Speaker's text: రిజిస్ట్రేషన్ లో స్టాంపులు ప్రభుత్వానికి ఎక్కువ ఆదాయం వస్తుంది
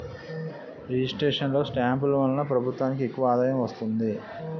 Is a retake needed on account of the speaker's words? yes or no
yes